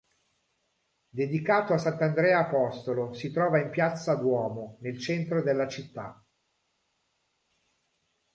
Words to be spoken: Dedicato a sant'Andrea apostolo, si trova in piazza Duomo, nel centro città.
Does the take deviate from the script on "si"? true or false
false